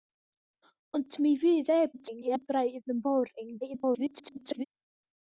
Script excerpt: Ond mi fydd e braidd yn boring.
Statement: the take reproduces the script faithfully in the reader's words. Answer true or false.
false